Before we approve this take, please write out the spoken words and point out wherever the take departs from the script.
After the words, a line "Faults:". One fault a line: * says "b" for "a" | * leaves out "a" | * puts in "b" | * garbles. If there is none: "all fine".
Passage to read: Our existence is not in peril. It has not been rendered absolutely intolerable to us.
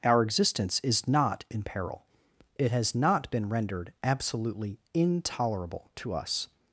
Our existence is not in peril. It has not been rendered absolutely intolerable to us.
Faults:
all fine